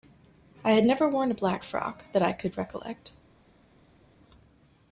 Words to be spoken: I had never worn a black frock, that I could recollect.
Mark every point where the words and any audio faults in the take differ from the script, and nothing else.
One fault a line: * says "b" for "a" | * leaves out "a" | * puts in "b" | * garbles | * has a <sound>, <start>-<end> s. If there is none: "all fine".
all fine